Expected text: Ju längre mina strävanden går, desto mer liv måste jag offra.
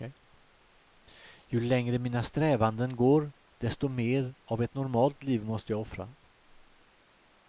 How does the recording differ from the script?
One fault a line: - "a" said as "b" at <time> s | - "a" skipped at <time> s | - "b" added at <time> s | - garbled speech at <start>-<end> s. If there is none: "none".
- "av ett normalt" added at 4.4 s